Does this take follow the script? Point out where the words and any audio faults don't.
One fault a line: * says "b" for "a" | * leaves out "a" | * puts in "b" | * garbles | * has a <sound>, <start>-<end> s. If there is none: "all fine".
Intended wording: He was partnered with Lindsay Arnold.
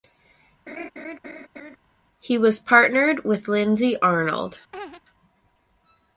* has a laugh, 0.7-1.8 s
* has a laugh, 4.7-5.0 s